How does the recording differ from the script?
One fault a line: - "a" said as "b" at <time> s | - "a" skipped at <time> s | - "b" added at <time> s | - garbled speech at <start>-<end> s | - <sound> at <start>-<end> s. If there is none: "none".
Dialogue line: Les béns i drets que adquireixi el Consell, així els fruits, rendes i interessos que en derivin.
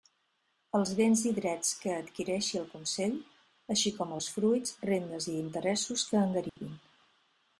- "Les" said as "Els" at 0.8 s
- "com" added at 4.0 s
- dropout at 6.5-6.6 s